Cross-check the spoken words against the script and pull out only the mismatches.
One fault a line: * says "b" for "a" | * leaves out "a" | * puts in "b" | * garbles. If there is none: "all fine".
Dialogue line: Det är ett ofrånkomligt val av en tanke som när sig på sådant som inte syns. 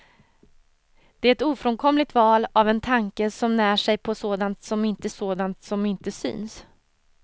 * puts in "sådant som inte"